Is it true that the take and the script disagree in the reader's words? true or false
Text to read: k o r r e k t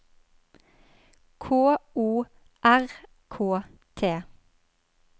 true